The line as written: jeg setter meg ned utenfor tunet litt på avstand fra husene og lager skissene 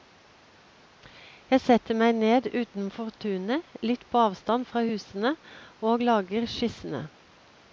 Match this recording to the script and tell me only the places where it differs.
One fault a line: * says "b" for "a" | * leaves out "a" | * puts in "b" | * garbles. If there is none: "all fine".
all fine